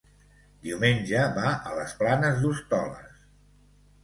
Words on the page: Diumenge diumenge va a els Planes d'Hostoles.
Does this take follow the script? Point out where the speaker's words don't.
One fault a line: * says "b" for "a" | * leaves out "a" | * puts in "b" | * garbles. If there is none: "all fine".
* leaves out "diumenge"
* says "les" for "els"